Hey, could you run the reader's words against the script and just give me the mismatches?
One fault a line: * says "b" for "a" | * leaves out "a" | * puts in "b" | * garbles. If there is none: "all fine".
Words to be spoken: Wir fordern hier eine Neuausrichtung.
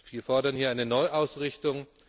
all fine